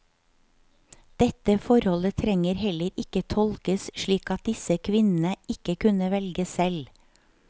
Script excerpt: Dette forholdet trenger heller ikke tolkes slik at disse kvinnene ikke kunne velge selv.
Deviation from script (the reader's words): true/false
false